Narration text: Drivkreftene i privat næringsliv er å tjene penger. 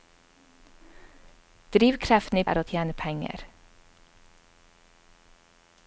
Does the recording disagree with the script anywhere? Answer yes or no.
yes